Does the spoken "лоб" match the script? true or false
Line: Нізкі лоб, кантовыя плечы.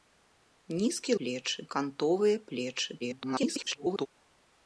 false